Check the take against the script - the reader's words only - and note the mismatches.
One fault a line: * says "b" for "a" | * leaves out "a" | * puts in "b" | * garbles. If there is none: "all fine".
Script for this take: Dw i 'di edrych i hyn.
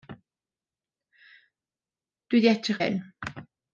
all fine